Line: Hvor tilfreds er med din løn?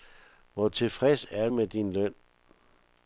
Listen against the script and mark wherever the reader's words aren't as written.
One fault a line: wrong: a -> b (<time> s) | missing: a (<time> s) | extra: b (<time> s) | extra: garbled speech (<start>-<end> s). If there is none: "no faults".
no faults